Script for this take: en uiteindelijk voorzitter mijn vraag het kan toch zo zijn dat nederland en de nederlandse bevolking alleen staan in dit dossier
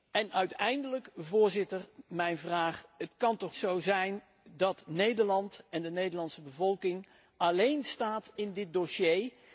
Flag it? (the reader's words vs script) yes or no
no